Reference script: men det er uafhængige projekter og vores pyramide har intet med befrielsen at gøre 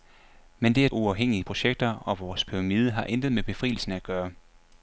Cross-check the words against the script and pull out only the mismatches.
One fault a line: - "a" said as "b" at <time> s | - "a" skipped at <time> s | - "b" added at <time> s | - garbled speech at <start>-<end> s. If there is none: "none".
none